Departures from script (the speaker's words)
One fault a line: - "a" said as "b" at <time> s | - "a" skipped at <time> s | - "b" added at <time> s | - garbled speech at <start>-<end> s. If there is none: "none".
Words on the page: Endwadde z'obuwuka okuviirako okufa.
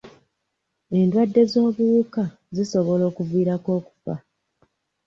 - "zisobola" added at 2.5 s